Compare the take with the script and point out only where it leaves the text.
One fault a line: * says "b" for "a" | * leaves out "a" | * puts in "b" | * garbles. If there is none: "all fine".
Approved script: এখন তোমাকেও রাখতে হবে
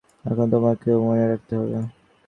* puts in "মনে"